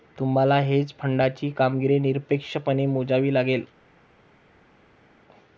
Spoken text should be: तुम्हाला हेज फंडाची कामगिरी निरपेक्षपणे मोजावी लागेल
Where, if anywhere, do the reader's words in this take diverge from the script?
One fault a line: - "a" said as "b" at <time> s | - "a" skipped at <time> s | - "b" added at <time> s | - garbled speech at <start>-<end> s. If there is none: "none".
none